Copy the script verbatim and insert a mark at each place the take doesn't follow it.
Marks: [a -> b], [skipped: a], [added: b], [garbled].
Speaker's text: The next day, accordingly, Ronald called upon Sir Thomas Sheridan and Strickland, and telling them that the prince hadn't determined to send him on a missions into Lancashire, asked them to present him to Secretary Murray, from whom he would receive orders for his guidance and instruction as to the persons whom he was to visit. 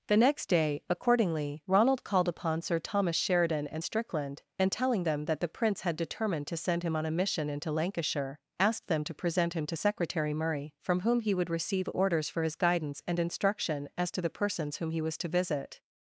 The next day, accordingly, Ronald called upon Sir Thomas Sheridan and Strickland, and telling them that the prince [hadn't -> had] determined to send him on a [missions -> mission] into Lancashire, asked them to present him to Secretary Murray, from whom he would receive orders for his guidance and instruction as to the persons whom he was to visit.